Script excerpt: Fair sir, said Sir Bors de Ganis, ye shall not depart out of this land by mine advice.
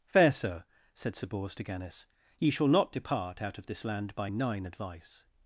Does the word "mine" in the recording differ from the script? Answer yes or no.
yes